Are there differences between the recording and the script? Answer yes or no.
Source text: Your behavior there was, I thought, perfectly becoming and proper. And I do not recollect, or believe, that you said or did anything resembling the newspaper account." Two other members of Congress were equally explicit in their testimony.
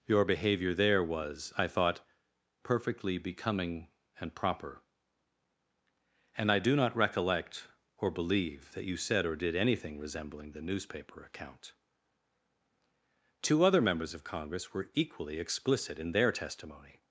no